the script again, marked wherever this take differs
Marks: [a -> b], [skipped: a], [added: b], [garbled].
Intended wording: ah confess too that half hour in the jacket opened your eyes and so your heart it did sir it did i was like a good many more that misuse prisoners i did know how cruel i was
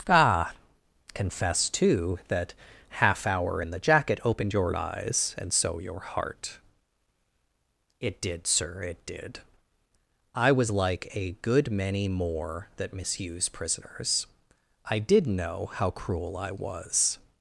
ah confess too that half hour in the jacket opened your eyes and so your heart it did sir it did i was like a good many more that misuse prisoners i did know how cruel i was